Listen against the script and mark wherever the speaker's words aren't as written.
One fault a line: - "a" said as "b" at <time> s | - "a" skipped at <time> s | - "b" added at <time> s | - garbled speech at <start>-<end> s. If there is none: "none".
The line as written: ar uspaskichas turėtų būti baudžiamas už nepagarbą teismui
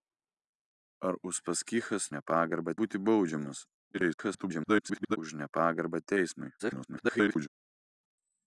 - "turėtų" said as "nepagarbą" at 2.2 s
- garbled speech at 3.9-5.2 s
- garbled speech at 6.6-7.5 s